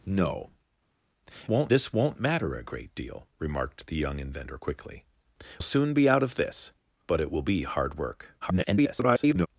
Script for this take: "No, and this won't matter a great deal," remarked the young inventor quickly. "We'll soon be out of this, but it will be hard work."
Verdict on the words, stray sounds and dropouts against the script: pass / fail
fail